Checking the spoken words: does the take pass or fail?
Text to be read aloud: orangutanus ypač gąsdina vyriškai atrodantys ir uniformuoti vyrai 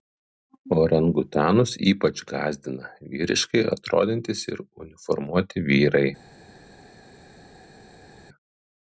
pass